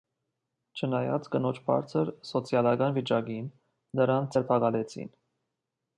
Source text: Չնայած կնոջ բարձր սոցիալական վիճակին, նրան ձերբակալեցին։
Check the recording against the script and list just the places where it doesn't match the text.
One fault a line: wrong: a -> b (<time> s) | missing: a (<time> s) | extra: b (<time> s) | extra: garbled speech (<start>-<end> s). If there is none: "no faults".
no faults